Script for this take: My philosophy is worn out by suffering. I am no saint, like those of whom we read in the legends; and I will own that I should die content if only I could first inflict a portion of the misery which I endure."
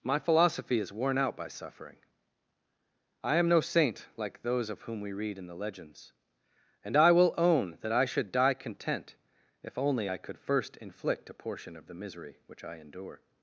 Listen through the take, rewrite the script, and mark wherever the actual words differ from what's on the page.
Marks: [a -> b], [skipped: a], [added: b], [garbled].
My philosophy is worn out by suffering. I am no saint, like those of whom we read in the legends; and I will own that I should die content if only I could first inflict a portion of the misery which I endure."